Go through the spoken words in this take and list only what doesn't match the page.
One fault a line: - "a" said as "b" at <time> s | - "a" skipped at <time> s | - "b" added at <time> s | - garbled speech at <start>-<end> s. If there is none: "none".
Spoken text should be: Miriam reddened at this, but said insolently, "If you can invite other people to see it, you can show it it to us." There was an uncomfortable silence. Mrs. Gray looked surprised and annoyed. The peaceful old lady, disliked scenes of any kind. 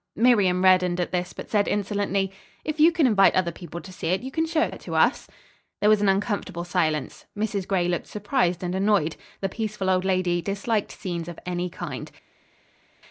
none